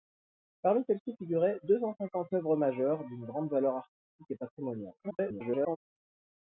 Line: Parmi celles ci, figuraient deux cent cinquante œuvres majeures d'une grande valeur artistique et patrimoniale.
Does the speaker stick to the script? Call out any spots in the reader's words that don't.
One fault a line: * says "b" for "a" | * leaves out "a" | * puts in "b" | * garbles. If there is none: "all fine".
* garbles